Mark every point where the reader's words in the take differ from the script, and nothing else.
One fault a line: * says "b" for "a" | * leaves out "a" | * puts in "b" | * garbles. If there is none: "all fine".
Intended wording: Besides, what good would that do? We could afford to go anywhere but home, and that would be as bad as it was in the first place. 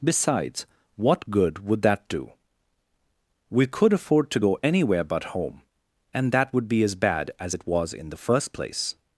all fine